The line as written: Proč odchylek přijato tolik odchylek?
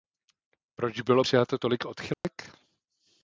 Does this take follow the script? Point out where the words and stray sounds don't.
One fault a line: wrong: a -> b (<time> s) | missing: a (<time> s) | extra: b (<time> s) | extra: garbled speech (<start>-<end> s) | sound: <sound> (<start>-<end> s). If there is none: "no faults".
wrong: odchylek -> bylo (1.0 s)
sound: dropout (2.1-2.2 s)